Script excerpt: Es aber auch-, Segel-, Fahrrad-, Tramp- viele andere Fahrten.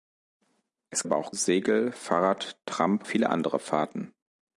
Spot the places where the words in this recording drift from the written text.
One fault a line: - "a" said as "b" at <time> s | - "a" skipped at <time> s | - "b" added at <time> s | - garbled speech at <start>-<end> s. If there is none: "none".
none